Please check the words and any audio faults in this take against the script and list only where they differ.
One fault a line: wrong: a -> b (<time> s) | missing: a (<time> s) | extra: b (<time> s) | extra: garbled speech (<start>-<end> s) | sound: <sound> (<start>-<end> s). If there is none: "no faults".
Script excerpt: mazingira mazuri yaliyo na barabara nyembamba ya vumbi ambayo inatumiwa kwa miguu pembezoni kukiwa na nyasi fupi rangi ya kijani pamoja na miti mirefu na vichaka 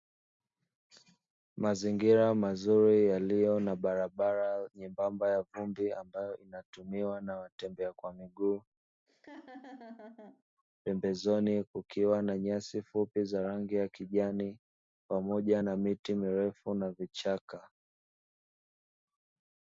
extra: na watembea (7.2 s)
sound: laugh (9.1-10.4 s)
extra: za (13.2 s)